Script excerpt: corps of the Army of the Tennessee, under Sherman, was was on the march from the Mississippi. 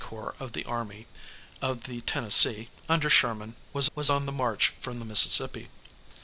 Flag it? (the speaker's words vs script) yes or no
no